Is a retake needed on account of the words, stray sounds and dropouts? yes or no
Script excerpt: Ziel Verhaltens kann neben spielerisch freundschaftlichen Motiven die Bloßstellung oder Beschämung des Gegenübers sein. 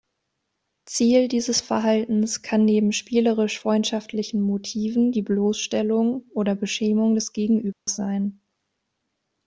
yes